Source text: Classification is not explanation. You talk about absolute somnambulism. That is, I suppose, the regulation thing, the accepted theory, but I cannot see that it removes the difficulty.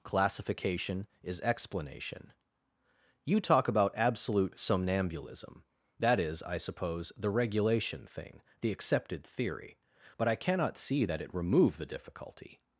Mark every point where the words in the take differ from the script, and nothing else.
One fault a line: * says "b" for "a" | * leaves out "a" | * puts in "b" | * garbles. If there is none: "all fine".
* leaves out "not"
* says "remove" for "removes"